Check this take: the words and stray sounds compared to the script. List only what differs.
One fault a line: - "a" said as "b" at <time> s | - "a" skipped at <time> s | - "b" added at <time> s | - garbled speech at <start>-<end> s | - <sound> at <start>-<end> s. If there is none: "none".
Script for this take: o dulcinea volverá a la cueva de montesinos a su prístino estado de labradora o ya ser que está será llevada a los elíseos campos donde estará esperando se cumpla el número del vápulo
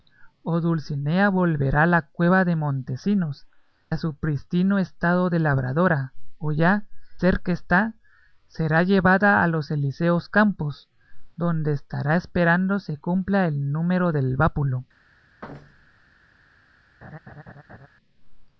- thud at 15.4-16.1 s
- laugh at 17.0-17.9 s